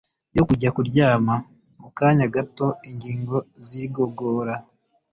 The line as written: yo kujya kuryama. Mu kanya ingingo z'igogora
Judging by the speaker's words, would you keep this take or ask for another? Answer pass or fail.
fail